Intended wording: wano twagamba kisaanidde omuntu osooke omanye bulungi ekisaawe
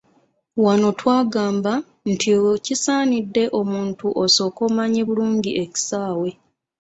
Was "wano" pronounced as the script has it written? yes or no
yes